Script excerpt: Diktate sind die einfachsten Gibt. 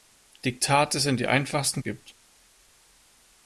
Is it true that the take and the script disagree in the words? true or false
false